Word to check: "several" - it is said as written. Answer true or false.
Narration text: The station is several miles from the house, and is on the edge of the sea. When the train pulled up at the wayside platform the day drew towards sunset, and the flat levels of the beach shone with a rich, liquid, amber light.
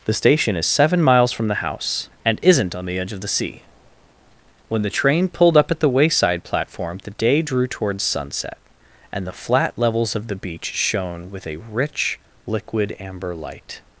false